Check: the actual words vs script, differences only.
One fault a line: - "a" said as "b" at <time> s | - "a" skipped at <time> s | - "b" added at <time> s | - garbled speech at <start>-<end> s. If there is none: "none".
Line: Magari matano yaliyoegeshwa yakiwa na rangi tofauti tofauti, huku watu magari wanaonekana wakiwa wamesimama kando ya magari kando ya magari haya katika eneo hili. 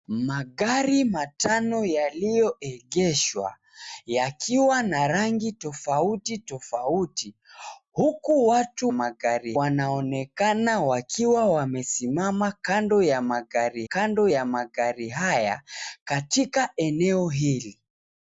none